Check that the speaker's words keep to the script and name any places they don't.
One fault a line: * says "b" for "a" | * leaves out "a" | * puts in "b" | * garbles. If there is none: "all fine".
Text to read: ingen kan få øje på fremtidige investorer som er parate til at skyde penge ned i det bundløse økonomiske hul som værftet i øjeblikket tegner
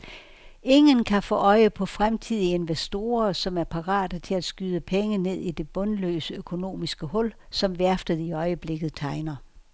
all fine